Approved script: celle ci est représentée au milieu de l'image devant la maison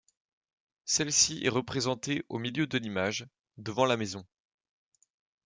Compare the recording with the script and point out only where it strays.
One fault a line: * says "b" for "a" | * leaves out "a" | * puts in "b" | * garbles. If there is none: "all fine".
all fine